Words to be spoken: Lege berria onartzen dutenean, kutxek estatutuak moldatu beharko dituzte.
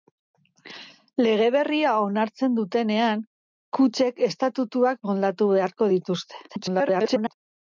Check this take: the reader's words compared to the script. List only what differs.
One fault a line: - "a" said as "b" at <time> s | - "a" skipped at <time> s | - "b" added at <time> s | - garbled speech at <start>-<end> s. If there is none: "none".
- garbled speech at 6.5-7.3 s